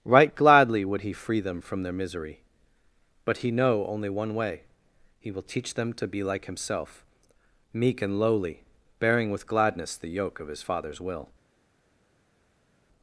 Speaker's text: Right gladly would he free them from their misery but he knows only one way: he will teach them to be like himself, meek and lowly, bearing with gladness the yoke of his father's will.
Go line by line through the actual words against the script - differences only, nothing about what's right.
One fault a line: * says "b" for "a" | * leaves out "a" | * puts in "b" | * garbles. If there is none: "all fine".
* says "know" for "knows"